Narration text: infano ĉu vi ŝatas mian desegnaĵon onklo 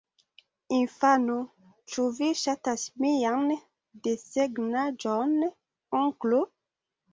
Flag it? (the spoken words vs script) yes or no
no